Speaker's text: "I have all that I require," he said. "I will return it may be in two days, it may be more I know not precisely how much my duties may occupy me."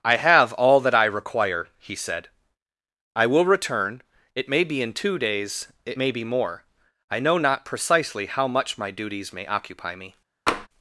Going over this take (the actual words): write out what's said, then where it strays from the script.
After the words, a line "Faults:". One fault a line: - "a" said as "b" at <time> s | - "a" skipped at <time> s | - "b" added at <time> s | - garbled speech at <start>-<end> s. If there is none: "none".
"I have all that I require," he said. "I will return it may be in two days, it may be more I know not precisely how much my duties may occupy me."
Faults:
none